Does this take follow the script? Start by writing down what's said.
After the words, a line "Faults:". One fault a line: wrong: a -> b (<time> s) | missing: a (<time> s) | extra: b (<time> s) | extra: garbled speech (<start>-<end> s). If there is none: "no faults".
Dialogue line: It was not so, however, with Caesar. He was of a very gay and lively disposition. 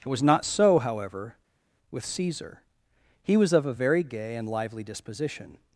It was not so, however, with Caesar. He was of a very gay and lively disposition.
Faults:
no faults